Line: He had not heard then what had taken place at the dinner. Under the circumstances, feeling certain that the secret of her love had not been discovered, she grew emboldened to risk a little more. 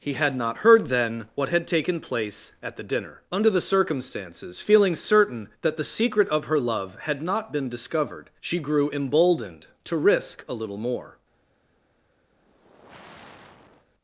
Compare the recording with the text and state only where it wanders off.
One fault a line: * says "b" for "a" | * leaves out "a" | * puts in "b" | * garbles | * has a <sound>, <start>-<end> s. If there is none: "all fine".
* has a sigh, 12.3-13.9 s